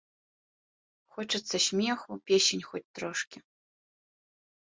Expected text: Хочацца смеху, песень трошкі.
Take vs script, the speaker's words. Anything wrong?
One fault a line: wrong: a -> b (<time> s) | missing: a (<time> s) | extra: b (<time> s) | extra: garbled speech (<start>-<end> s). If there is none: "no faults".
extra: хоць (2.7 s)